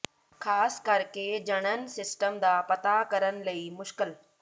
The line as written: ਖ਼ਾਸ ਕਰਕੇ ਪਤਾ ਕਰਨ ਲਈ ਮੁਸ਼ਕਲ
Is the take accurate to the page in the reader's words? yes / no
no